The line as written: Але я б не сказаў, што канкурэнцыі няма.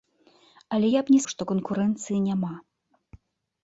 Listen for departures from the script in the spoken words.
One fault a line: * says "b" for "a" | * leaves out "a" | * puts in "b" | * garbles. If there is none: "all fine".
* leaves out "сказаў"